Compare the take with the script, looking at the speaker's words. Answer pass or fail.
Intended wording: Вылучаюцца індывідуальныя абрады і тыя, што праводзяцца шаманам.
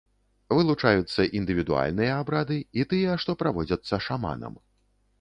pass